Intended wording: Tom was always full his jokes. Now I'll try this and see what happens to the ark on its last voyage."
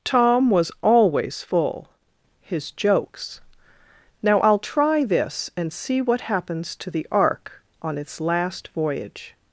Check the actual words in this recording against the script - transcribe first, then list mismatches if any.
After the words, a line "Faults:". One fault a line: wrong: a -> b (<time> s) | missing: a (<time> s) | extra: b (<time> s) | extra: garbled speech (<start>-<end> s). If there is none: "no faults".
Tom was always full his jokes. Now I'll try this and see what happens to the ark on its last voyage."
Faults:
no faults